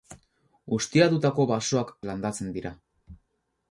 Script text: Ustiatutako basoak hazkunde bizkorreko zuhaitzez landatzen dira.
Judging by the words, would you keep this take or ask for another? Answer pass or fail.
fail